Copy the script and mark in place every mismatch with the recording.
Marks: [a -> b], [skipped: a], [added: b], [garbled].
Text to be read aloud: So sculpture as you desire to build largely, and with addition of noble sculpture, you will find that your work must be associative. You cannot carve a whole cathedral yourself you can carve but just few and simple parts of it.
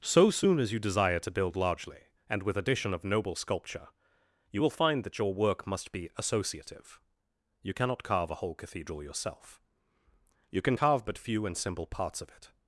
So [sculpture -> soon] as you desire to build largely, and with addition of noble sculpture, you will find that your work must be associative. You cannot carve a whole cathedral yourself you can carve but [skipped: just] few and simple parts of it.